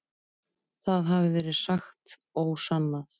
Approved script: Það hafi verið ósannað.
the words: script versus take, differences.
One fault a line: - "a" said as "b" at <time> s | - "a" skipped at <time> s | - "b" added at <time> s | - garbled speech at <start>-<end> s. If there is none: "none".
- "sagt" added at 1.6 s